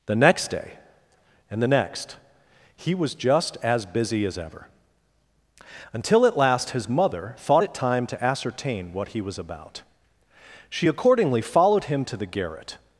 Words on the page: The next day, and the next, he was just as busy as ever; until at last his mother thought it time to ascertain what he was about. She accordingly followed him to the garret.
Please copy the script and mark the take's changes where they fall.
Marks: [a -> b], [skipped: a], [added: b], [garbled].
The next day, and the next, he was just as busy as ever; until at last his mother thought it time to ascertain what he was about. She accordingly followed him to the garret.